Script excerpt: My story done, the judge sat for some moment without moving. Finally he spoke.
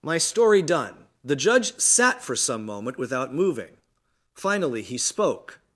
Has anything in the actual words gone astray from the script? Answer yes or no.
no